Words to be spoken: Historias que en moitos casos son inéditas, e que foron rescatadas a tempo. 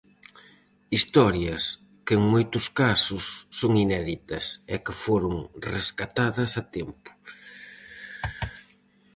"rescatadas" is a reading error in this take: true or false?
false